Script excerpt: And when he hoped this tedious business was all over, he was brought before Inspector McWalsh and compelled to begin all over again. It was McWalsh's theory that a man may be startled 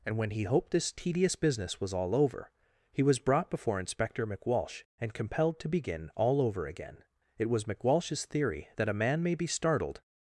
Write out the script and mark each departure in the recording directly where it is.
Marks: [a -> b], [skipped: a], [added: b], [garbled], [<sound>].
And when he hoped this tedious business was all over, he was brought before Inspector McWalsh and compelled to begin all over again. It was McWalsh's theory that a man may be startled